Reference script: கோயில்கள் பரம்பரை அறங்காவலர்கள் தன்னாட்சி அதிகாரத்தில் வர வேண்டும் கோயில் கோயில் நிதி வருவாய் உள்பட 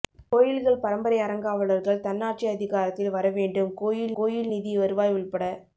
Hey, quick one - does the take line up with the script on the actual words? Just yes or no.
yes